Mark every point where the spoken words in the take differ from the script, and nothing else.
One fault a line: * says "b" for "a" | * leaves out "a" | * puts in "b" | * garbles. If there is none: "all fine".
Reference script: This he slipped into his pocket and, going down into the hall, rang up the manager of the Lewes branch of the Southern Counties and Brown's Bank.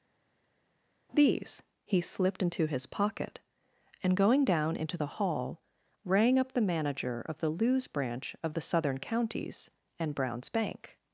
* says "These" for "This"